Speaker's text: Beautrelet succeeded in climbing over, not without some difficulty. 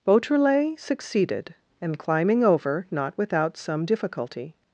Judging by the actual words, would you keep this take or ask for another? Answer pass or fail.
fail